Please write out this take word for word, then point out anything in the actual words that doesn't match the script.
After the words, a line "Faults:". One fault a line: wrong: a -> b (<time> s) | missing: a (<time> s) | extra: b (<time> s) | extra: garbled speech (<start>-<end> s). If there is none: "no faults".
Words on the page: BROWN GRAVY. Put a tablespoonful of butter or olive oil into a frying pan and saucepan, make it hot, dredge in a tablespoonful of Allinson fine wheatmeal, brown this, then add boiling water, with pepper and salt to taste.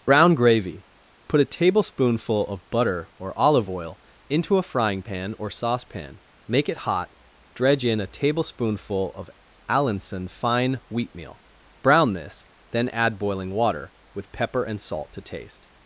BROWN GRAVY. Put a tablespoonful of butter or olive oil into a frying pan or saucepan, make it hot, dredge in a tablespoonful of Allinson fine wheatmeal, brown this, then add boiling water, with pepper and salt to taste.
Faults:
wrong: and -> or (5.4 s)